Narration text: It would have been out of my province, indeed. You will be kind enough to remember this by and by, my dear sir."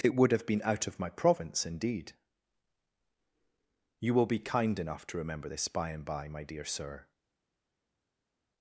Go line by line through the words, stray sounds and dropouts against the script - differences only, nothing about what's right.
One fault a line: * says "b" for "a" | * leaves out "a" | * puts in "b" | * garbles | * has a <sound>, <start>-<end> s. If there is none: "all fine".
all fine